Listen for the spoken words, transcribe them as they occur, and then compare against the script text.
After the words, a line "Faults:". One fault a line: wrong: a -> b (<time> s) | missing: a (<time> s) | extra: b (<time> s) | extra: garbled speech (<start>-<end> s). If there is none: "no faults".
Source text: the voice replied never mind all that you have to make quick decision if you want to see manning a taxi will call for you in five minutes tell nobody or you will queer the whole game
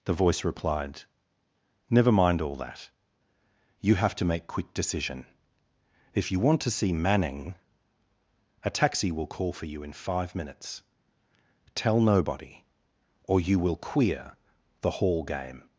the voice replied never mind all that you have to make quick decision if you want to see manning a taxi will call for you in five minutes tell nobody or you will queer the hall game
Faults:
wrong: whole -> hall (14.9 s)